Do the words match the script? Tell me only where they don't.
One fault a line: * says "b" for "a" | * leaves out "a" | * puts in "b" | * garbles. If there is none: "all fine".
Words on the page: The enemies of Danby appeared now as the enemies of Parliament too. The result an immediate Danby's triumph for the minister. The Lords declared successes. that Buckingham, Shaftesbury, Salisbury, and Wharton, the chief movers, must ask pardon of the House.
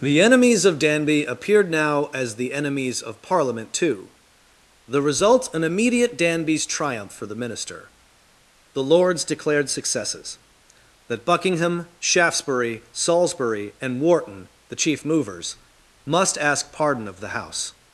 all fine